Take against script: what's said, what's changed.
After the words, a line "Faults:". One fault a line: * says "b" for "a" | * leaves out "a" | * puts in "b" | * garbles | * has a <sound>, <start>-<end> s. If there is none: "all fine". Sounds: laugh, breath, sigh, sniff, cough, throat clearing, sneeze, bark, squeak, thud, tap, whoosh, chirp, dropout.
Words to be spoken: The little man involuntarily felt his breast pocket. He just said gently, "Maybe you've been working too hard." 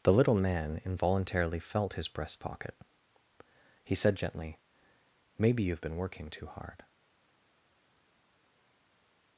The little man involuntarily felt his breast pocket. He said gently, "Maybe you've been working too hard."
Faults:
* leaves out "just"